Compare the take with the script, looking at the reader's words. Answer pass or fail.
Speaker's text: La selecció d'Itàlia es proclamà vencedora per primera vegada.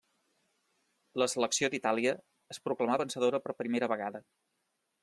pass